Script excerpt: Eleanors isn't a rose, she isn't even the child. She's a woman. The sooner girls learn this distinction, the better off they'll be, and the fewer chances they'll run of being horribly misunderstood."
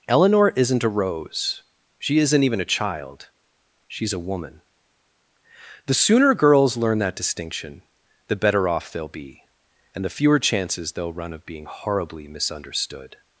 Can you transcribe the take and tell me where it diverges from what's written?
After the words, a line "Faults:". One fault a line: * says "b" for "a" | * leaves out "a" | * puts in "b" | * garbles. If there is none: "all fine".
Eleanor isn't a rose, she isn't even a child. She's a woman. The sooner girls learn that distinction, the better off they'll be, and the fewer chances they'll run of being horribly misunderstood."
Faults:
* says "Eleanor" for "Eleanors"
* says "a" for "the"
* says "that" for "this"